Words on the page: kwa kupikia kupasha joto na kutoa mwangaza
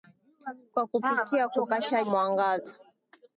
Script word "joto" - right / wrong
wrong